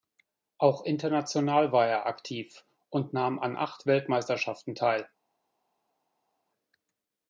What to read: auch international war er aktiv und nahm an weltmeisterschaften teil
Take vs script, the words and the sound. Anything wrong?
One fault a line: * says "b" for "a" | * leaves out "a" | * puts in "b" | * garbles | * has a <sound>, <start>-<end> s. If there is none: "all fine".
* puts in "acht"